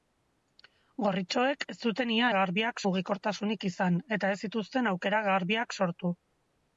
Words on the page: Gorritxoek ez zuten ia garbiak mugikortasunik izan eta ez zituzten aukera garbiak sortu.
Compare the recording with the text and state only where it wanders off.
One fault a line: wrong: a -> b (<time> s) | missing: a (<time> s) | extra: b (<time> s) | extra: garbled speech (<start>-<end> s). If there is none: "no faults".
no faults